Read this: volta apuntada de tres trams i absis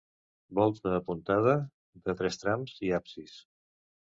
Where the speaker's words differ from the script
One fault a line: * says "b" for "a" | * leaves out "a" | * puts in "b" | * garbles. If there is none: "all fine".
all fine